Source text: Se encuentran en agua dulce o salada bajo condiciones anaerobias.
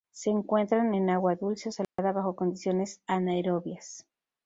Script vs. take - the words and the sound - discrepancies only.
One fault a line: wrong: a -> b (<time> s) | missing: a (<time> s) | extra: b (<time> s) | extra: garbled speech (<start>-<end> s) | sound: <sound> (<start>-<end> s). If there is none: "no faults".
sound: dropout (1.8-2.0 s)